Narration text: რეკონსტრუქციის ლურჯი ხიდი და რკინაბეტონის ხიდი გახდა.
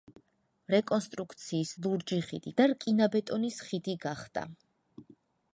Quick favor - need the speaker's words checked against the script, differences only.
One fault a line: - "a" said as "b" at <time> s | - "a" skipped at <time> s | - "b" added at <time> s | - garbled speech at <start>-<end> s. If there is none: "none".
none